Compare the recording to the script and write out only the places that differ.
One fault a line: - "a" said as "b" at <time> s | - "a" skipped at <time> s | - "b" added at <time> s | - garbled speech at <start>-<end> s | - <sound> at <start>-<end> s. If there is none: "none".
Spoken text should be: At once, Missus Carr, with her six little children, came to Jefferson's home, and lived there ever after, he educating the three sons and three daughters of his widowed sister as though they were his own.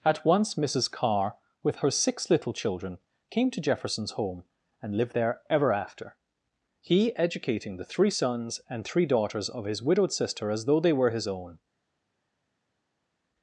none